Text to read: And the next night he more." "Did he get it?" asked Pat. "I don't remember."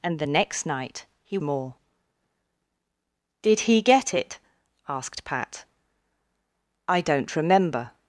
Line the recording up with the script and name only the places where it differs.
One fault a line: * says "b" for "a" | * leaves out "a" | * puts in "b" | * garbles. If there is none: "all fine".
all fine